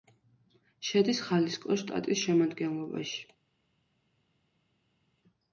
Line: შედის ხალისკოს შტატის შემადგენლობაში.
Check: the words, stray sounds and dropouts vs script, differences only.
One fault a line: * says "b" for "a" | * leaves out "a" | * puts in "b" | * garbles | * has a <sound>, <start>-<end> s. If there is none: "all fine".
all fine